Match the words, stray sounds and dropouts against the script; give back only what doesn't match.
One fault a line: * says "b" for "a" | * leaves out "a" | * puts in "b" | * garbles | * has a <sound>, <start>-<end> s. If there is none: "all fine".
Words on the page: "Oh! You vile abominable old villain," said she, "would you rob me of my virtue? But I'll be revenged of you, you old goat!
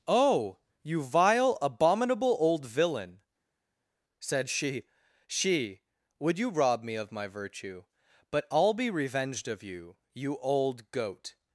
* puts in "she"